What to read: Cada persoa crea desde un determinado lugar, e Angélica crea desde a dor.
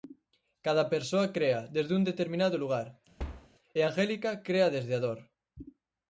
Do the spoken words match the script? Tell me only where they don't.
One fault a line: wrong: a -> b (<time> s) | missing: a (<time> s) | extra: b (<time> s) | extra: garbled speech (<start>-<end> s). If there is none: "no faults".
no faults